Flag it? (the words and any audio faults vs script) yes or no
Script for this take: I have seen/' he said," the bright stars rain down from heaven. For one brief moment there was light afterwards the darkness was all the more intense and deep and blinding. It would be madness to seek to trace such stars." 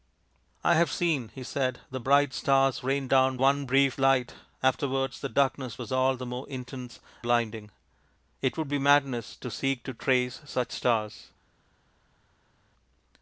yes